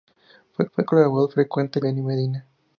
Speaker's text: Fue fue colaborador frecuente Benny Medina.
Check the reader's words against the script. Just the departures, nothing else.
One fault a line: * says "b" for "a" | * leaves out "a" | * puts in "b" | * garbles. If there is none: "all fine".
all fine